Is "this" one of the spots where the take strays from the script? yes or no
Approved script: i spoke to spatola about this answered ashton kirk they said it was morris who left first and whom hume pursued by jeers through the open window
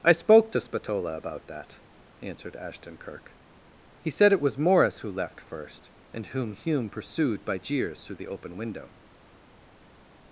yes